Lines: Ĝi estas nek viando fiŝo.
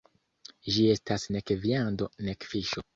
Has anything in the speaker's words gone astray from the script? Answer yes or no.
yes